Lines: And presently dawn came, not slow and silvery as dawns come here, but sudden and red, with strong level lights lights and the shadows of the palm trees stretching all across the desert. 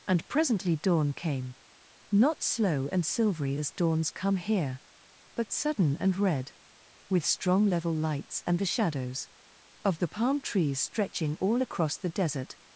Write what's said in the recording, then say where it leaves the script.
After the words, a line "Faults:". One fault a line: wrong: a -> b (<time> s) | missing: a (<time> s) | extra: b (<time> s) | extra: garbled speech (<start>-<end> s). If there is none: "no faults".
And presently dawn came, not slow and silvery as dawns come here, but sudden and red, with strong level lights and the shadows of the palm trees stretching all across the desert.
Faults:
missing: lights (8.4 s)